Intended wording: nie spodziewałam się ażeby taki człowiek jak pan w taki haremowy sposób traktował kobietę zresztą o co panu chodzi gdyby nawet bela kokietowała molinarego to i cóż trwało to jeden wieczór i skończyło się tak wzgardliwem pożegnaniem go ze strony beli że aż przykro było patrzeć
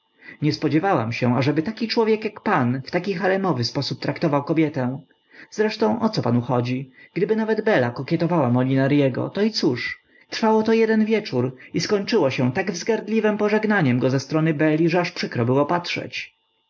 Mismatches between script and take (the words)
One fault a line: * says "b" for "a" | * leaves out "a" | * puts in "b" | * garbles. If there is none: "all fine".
all fine